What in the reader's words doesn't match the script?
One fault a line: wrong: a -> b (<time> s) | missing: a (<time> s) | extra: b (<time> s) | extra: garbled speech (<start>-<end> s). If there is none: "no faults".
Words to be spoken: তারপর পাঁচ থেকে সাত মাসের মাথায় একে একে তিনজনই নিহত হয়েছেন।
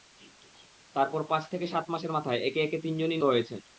missing: নিহত (3.2 s)